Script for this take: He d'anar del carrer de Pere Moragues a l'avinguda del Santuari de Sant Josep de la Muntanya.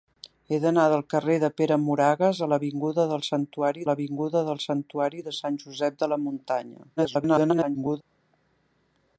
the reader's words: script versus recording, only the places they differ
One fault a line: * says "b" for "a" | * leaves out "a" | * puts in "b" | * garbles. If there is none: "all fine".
* puts in "l'avinguda del Santuari"
* garbles